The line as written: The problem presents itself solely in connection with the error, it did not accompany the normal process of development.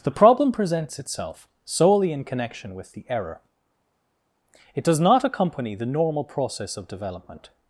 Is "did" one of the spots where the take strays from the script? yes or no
yes